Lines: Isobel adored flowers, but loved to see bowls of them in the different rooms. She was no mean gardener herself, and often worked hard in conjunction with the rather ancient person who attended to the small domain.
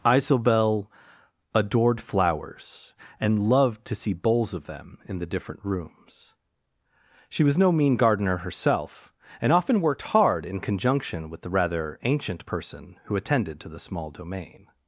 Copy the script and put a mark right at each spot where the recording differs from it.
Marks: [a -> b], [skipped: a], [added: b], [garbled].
Isobel adored flowers, [but -> and] loved to see bowls of them in the different rooms. She was no mean gardener herself, and often worked hard in conjunction with the rather ancient person who attended to the small domain.